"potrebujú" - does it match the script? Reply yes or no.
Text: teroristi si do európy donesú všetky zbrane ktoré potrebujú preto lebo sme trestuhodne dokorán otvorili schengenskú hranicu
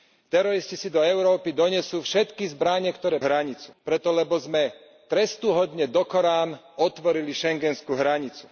no